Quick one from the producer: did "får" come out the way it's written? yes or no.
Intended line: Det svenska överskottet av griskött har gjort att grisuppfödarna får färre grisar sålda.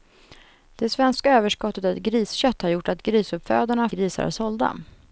no